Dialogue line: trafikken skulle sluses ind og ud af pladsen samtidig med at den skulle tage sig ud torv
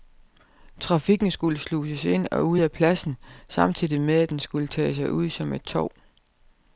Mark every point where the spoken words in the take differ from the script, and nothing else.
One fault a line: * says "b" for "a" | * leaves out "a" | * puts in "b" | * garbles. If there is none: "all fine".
* puts in "som et"